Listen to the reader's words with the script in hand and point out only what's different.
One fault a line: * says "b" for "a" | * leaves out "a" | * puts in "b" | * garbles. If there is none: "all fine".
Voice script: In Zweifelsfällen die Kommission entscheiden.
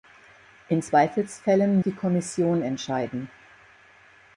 all fine